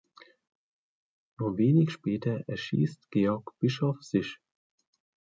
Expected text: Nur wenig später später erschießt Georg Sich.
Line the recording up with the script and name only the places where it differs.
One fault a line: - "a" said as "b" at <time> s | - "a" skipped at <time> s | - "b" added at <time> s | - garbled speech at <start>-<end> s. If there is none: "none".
- "später" skipped at 2.4 s
- "Bischoff" added at 3.6 s